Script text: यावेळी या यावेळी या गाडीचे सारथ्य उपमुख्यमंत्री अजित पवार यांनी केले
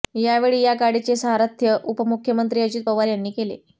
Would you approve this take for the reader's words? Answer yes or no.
no